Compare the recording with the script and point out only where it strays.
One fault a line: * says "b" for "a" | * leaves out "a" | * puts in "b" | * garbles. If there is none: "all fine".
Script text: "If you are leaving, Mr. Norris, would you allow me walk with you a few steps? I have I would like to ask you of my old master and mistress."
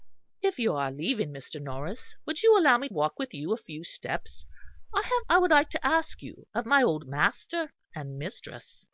all fine